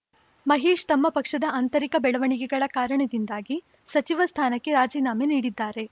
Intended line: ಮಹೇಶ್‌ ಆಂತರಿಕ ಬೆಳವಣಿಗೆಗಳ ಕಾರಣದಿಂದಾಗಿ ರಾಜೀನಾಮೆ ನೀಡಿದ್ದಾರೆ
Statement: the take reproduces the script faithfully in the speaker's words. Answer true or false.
false